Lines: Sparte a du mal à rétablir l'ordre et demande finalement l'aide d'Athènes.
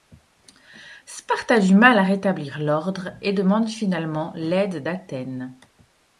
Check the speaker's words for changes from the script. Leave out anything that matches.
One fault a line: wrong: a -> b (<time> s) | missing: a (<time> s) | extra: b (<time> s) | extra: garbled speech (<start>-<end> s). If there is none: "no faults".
no faults